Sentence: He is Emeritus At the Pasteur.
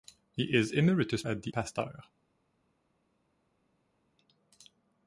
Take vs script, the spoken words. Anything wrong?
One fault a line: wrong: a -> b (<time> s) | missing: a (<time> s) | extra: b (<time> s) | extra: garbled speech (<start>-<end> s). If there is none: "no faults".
no faults